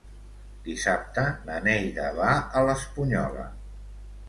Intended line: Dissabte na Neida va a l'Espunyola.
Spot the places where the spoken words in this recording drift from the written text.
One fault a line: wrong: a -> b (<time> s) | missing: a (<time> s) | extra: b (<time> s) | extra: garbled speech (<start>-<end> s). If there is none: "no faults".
no faults